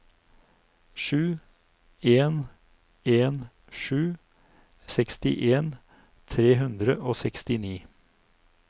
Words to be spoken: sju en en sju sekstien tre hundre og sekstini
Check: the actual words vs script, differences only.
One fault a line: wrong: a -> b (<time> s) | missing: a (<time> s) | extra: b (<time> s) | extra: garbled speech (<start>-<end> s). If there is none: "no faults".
no faults